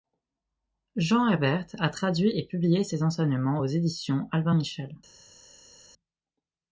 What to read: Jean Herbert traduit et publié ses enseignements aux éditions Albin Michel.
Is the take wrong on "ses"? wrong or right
right